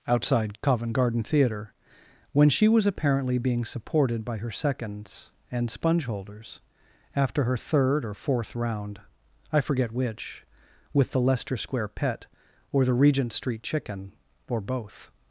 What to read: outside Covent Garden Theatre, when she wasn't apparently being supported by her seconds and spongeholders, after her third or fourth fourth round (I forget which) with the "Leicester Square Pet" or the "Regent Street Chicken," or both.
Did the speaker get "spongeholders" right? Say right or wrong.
right